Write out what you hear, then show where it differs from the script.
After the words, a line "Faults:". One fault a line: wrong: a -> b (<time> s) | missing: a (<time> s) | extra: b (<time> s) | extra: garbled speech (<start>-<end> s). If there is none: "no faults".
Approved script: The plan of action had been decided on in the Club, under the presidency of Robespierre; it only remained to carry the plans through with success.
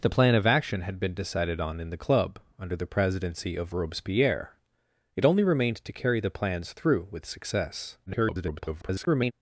The plan of action had been decided on in the Club, under the presidency of Robespierre; it only remained to carry the plans through with success. [garbled]
Faults:
extra: garbled speech (8.1-9.3 s)